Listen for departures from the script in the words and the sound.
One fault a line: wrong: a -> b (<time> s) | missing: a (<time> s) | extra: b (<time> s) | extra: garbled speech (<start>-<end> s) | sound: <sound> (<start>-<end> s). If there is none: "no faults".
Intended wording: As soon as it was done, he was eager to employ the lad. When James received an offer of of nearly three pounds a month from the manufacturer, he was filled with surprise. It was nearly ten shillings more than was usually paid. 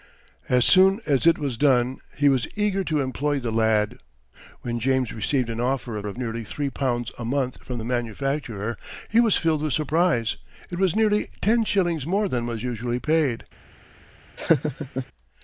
sound: laugh (14.4-15.1 s)